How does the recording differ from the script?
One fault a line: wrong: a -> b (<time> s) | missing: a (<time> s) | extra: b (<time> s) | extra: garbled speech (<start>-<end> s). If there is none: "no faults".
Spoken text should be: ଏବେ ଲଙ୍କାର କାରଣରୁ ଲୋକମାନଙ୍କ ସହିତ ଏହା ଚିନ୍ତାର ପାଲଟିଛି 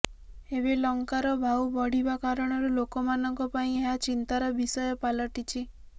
extra: ଭାଉ ବଢିବା (1.4 s)
wrong: ସହିତ -> ପାଇଁ (3.5 s)
extra: ବିଷୟ (4.6 s)